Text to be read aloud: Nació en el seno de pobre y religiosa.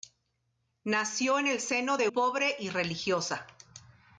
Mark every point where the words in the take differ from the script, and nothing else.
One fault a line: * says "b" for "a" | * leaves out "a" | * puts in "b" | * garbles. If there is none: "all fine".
all fine